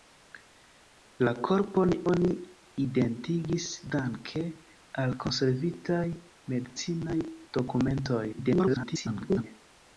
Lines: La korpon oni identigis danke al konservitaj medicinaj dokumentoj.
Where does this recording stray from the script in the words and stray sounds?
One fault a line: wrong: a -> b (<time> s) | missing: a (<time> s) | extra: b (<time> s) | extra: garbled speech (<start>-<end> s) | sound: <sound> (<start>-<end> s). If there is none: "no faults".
extra: garbled speech (8.3-9.4 s)